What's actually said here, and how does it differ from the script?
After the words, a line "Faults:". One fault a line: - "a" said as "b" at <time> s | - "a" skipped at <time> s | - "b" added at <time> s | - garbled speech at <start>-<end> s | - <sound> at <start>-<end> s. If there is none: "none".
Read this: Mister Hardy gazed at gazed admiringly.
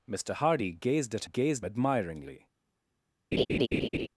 Mister Hardy gazed at gazed admiringly.
Faults:
- laugh at 3.3-4.1 s